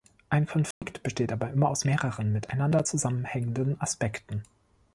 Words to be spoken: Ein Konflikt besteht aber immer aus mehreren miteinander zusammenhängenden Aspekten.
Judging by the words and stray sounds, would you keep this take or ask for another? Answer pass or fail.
fail